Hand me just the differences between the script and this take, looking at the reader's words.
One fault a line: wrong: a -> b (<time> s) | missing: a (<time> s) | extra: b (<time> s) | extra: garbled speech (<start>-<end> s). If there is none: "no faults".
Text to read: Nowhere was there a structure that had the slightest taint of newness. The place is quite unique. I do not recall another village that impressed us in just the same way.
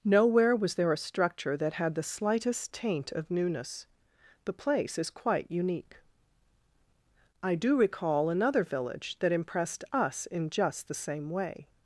missing: not (7.8 s)